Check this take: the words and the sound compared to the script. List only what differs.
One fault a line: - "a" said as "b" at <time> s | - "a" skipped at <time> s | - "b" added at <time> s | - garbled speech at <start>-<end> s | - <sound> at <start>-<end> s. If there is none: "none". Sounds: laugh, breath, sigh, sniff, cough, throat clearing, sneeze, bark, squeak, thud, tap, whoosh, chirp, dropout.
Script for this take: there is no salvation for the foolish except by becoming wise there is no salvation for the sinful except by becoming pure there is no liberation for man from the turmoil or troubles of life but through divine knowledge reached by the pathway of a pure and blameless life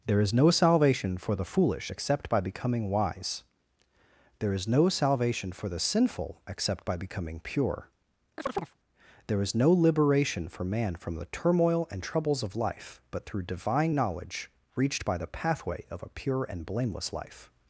- chirp at 8.4-8.8 s
- "or" said as "and" at 11.9 s